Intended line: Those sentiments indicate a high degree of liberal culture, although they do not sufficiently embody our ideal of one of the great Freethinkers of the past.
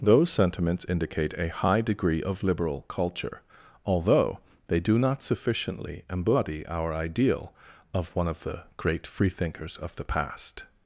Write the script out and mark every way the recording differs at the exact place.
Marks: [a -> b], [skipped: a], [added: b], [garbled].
Those sentiments indicate a high degree of liberal culture, although they do not sufficiently embody our ideal of one of the great Freethinkers of the past.